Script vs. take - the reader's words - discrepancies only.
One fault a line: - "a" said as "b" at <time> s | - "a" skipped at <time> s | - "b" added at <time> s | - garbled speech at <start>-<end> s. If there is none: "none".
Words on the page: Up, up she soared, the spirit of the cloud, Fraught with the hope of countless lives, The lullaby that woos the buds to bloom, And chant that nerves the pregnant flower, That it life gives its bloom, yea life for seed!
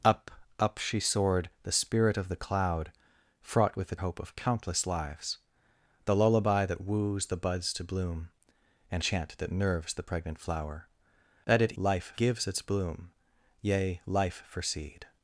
none